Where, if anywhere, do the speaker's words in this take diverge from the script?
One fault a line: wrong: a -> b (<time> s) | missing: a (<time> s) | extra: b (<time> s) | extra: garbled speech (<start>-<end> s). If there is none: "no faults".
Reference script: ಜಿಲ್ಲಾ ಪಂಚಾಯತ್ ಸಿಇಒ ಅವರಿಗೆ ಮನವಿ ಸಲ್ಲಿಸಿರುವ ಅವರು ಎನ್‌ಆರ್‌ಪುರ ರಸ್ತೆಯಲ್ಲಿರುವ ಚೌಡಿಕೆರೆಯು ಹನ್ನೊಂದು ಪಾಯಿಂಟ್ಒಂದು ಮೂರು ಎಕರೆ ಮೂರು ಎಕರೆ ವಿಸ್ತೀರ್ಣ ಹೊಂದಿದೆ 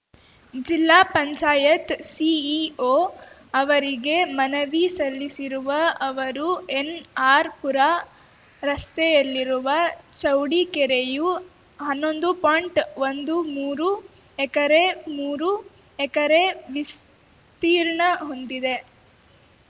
no faults